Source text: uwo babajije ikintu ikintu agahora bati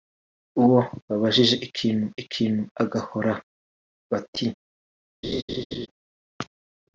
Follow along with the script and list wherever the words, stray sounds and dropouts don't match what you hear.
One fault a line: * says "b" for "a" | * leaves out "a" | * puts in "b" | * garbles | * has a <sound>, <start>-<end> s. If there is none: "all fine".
* has a laugh, 5.2-5.9 s